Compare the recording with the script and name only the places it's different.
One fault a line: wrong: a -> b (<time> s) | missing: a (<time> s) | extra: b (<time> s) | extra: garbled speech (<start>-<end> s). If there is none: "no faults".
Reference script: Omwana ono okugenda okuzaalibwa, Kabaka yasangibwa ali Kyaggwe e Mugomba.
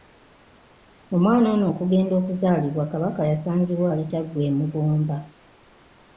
no faults